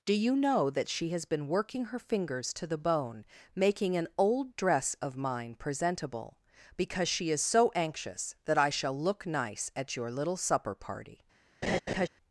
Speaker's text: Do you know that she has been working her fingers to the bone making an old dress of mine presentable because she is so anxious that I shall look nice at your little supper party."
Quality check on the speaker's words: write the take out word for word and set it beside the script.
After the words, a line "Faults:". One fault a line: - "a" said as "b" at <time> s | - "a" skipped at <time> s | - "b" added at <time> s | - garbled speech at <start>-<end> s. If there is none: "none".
Do you know that she has been working her fingers to the bone making an old dress of mine presentable because she is so anxious that I shall look nice at your little supper party."
Faults:
none